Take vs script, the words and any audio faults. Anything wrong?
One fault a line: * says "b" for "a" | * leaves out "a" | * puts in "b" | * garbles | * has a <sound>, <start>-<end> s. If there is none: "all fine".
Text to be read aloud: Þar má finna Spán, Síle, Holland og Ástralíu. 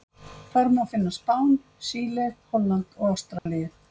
* has a dropout, 3.4-3.5 s